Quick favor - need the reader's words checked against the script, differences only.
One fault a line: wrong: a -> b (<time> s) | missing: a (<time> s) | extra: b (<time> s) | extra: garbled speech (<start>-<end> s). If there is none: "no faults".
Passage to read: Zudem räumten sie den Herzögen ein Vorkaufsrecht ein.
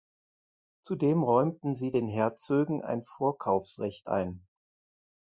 no faults